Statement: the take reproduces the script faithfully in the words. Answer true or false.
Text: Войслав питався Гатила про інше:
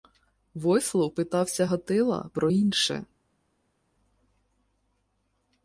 true